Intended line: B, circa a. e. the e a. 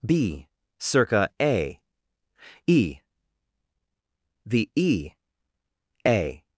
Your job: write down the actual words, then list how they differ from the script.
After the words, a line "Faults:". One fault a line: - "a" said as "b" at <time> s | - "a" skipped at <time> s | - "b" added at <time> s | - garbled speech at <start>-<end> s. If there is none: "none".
B, circa a. e. the e a.
Faults:
none